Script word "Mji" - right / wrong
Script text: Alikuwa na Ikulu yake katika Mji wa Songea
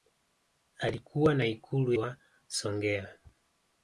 wrong